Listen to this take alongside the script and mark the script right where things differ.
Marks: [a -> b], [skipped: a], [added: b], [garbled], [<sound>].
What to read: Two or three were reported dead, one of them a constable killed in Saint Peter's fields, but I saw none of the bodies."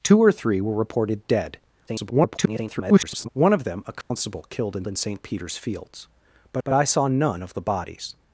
Two or three were reported dead, [garbled] one of them a constable [dropout] killed in [added: in] Saint Peter's fields, but [added: but] I saw none of the bodies."